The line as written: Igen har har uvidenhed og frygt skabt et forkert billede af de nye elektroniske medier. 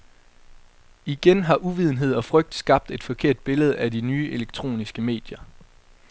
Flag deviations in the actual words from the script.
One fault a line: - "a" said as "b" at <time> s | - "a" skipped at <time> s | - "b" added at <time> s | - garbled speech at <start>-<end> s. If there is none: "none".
- "har" skipped at 1.6 s